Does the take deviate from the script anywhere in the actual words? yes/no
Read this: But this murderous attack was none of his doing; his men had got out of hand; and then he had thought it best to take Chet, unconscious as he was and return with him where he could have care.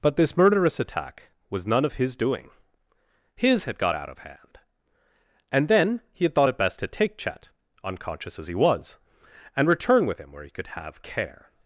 yes